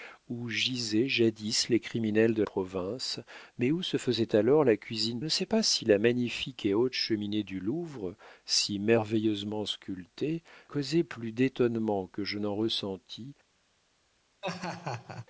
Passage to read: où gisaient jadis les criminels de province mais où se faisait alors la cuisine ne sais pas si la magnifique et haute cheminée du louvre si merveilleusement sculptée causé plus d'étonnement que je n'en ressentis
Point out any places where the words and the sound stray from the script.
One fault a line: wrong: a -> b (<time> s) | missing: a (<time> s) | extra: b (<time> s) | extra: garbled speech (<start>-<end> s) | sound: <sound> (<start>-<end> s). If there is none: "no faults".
sound: laugh (14.4-15.3 s)